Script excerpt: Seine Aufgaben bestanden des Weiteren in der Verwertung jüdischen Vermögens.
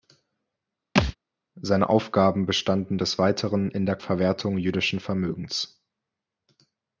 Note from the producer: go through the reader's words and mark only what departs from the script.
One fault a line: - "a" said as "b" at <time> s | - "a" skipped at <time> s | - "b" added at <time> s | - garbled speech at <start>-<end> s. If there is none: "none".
none